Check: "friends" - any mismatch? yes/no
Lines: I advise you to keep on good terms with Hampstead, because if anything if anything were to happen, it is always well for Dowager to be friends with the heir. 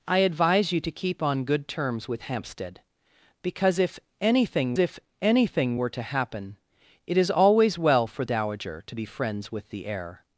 no